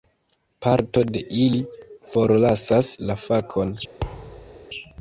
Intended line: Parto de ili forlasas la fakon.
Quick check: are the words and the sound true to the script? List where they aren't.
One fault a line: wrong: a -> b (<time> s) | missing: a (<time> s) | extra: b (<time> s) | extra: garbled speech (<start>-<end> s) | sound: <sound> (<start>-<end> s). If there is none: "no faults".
sound: thud (4.0-4.7 s)